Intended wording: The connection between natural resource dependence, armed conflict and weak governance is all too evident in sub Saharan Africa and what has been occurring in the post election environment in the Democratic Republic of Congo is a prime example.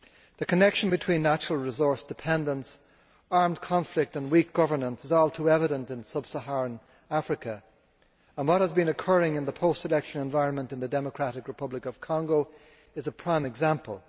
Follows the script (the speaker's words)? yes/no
yes